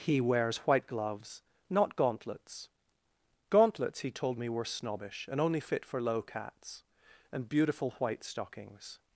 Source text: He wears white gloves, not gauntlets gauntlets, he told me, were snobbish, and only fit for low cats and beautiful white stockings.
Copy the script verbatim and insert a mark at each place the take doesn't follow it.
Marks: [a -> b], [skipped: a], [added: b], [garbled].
He wears white gloves, not gauntlets gauntlets, he told me, were snobbish, and only fit for low cats and beautiful white stockings.